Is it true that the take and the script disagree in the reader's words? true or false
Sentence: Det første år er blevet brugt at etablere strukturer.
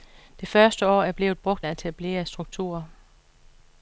false